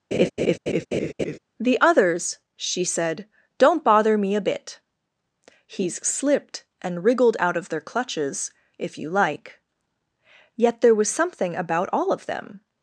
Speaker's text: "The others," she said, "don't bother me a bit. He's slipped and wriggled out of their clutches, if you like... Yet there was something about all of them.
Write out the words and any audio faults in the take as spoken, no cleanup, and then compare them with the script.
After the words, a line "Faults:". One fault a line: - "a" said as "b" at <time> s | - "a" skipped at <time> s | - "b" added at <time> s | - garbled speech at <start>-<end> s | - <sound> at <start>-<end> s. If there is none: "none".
"The others," she said, "don't bother me a bit. He's slipped and wriggled out of their clutches, if you like... Yet there was something about all of them.
Faults:
- laugh at 0.1-1.4 s